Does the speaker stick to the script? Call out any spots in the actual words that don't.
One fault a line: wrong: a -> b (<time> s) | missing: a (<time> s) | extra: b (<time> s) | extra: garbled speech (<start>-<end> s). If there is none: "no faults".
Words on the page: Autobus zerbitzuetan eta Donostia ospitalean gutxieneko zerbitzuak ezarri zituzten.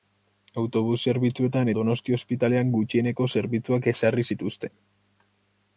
missing: eta (1.7 s)